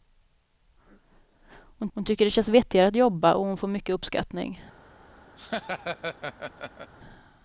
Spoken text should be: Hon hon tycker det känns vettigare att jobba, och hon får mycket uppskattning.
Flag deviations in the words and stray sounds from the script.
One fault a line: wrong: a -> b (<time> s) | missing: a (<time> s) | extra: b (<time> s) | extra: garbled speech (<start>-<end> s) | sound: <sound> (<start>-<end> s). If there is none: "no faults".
sound: laugh (5.4-6.9 s)